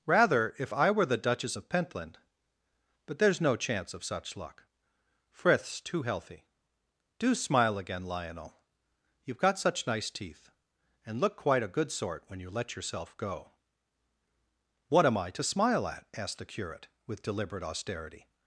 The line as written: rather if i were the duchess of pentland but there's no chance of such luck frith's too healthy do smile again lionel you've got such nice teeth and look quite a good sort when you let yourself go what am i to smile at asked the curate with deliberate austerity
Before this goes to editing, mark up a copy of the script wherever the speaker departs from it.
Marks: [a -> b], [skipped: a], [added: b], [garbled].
rather if i were the duchess of pentland but there's no chance of such luck frith's too healthy do smile again lionel you've got such nice teeth and look quite a good sort when you let yourself go what am i to smile at asked the curate with deliberate austerity